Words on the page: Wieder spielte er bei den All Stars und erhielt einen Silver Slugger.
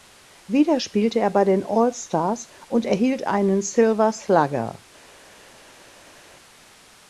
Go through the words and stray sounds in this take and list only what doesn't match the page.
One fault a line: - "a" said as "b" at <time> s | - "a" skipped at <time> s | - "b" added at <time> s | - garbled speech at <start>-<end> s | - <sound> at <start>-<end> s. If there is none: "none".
none